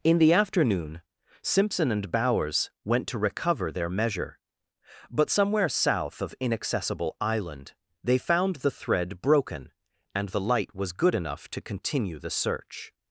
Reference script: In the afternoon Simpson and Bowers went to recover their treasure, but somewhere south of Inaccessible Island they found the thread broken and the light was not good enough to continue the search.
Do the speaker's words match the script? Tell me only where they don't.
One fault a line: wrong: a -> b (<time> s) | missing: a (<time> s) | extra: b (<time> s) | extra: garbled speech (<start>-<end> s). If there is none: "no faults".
wrong: treasure -> measure (3.9 s)
missing: not (10.9 s)